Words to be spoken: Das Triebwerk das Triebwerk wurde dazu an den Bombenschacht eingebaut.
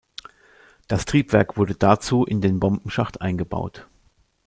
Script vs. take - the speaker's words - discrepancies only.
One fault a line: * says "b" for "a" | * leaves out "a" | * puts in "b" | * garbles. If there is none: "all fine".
* leaves out "das Triebwerk"
* says "in" for "an"